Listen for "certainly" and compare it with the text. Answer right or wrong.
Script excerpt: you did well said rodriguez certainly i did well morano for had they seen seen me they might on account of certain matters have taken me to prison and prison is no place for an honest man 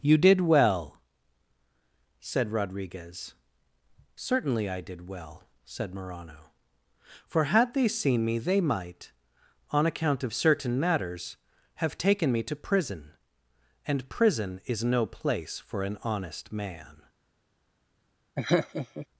right